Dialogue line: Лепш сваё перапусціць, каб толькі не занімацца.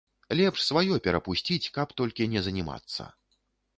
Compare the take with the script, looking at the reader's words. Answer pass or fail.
pass